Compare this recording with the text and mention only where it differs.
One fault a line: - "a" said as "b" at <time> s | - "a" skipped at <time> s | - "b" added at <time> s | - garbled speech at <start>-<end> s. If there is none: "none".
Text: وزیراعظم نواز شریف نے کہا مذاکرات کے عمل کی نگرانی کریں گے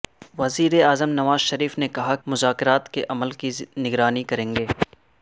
none